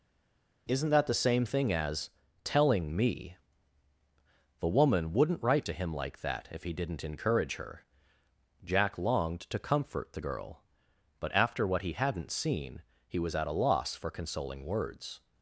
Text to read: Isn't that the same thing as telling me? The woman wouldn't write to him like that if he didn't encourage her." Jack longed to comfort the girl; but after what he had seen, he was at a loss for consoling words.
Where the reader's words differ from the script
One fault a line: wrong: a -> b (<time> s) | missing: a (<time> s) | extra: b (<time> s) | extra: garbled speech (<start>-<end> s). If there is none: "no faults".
wrong: had -> hadn't (11.9 s)